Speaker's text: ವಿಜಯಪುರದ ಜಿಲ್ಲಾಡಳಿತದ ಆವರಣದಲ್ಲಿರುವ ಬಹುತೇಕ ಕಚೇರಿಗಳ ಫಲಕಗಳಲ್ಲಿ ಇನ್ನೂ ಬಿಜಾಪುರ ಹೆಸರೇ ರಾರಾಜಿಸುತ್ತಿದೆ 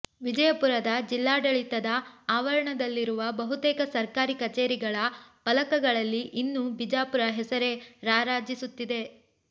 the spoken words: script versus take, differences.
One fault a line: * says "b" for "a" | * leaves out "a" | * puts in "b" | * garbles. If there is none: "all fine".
* puts in "ಸರ್ಕಾರಿ"